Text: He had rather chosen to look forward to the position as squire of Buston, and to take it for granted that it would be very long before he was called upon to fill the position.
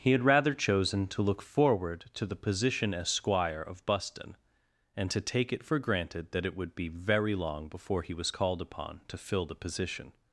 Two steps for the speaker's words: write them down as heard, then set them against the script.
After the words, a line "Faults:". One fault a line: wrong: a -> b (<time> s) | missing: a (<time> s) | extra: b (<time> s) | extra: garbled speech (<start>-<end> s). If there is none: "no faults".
He had rather chosen to look forward to the position as squire of Buston, and to take it for granted that it would be very long before he was called upon to fill the position.
Faults:
no faults